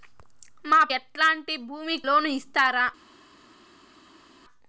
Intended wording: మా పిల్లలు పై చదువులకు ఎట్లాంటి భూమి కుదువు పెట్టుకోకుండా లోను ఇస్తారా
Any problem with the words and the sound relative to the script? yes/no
yes